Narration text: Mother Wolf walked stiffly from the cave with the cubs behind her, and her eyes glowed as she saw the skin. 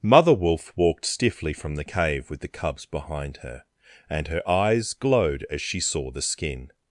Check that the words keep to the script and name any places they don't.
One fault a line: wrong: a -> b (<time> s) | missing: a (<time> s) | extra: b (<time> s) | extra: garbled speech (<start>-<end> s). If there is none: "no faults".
no faults